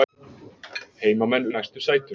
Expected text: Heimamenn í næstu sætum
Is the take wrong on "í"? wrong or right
right